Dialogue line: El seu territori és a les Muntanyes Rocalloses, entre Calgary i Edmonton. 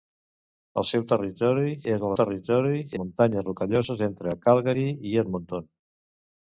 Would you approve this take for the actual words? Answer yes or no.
no